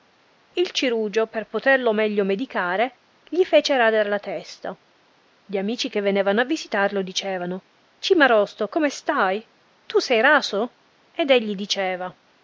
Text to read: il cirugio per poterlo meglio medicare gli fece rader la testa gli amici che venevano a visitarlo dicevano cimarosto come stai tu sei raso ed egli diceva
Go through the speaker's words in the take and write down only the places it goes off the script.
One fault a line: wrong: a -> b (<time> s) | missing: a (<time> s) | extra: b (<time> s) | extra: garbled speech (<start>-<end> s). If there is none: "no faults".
no faults